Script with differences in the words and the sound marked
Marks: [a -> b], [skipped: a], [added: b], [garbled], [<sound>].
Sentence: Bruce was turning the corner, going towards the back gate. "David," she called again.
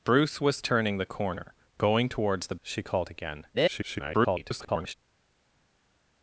Bruce was turning the corner, going towards the [skipped: back gate. "David,"] she called again. [garbled]